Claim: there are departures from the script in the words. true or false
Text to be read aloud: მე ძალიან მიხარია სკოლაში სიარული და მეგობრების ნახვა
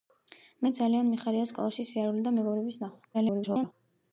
true